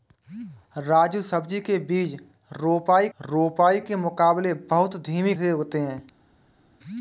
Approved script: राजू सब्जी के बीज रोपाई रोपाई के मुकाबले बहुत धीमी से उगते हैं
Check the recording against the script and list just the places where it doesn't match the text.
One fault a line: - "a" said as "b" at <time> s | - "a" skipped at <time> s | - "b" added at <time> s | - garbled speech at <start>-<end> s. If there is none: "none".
none